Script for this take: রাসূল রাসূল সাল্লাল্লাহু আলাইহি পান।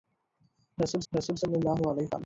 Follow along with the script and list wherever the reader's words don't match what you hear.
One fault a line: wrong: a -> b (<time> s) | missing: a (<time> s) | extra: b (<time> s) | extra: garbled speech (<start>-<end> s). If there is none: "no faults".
no faults